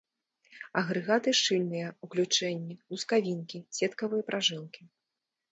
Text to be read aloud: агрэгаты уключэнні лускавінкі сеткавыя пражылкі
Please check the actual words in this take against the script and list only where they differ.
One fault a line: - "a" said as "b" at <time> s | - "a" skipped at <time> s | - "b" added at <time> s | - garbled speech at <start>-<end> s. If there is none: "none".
- "шчыльныя" added at 1.4 s